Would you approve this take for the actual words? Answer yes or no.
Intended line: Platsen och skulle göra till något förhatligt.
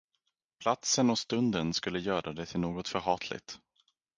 no